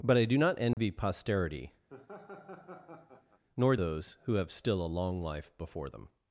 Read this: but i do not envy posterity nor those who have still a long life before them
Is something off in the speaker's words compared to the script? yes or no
no